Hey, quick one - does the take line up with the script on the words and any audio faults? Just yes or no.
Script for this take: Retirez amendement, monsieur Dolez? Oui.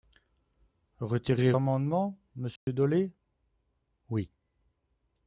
no